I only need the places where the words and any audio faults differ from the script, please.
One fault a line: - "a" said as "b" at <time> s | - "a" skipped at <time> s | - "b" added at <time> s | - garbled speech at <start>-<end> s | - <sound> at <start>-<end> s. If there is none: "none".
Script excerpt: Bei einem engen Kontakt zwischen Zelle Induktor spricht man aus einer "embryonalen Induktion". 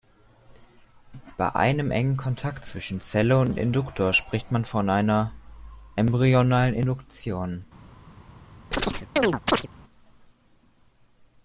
- "und" added at 3.4 s
- "aus" said as "von" at 4.7 s
- chirp at 8.7-9.7 s